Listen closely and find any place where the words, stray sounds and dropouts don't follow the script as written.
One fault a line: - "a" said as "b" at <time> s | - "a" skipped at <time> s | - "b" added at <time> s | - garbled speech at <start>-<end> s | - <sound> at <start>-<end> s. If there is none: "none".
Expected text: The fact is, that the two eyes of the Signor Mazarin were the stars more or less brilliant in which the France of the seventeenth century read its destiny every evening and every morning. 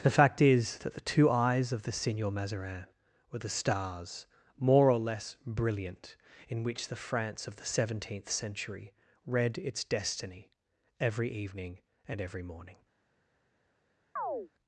- chirp at 14.2-14.5 s